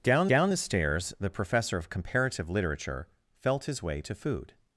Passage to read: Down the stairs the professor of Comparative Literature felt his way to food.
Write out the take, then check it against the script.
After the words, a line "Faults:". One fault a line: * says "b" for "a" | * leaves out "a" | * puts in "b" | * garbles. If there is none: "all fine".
Down down the stairs the professor of Comparative Literature felt his way to food.
Faults:
* puts in "down"